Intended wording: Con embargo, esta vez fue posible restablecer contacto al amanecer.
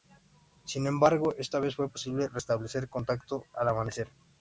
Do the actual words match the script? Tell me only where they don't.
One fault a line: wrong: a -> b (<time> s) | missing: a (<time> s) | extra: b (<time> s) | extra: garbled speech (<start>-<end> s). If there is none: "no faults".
wrong: Con -> Sin (0.7 s)